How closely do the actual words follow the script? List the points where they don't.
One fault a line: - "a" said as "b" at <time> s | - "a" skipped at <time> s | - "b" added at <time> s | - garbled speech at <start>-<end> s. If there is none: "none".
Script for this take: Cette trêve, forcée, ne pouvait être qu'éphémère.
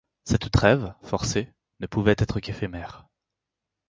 none